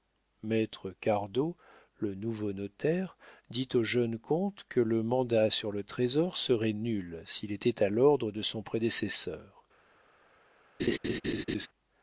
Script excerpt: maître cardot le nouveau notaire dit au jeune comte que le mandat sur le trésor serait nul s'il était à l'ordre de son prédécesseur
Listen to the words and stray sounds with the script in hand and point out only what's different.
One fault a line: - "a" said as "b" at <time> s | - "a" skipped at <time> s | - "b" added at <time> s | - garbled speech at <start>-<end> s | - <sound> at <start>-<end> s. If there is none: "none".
- laugh at 10.8-11.7 s